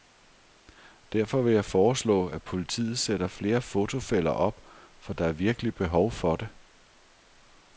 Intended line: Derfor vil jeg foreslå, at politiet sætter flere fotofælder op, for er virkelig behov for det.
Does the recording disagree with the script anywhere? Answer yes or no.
yes